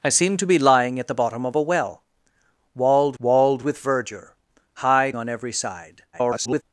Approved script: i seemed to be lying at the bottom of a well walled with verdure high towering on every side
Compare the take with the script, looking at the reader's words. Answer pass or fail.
fail